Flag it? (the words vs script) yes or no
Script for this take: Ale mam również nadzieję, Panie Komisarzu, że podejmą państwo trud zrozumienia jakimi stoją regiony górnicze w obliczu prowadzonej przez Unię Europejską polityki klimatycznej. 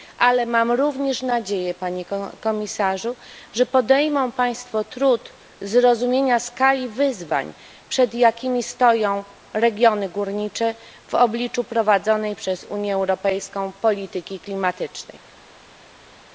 yes